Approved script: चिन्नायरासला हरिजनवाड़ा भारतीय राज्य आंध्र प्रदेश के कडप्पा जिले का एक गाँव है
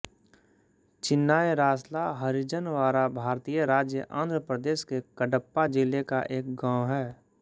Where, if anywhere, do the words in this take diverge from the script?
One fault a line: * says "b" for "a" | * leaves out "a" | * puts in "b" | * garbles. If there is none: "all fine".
all fine